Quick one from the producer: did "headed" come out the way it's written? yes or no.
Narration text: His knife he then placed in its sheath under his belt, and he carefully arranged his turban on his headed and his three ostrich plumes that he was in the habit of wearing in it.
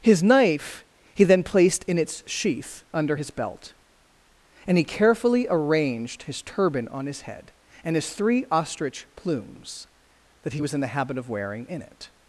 no